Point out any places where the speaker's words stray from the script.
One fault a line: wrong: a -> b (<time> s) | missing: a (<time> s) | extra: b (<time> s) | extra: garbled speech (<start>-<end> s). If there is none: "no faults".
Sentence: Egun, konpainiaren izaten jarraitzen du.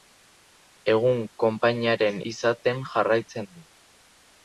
no faults